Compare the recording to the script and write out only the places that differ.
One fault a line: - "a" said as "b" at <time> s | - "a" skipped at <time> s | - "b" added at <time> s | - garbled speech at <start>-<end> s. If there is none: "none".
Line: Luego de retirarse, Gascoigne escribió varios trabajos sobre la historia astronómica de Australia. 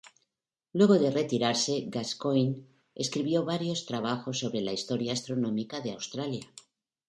none